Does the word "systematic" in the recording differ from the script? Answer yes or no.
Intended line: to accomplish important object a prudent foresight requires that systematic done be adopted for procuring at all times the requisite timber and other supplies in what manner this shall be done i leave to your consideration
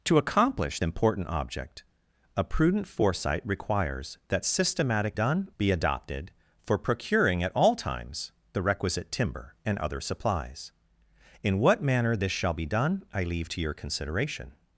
no